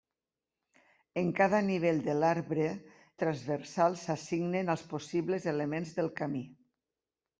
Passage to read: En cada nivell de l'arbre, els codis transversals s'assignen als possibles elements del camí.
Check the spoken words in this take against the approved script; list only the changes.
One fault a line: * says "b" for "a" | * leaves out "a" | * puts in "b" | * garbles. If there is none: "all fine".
* leaves out "els codis"